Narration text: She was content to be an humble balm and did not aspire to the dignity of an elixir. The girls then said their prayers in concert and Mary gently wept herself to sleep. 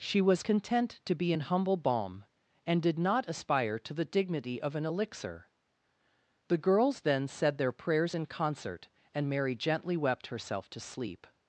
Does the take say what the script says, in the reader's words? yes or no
yes